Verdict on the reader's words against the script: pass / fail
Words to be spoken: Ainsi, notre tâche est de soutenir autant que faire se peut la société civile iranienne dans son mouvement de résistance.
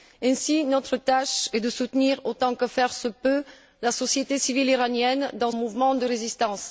fail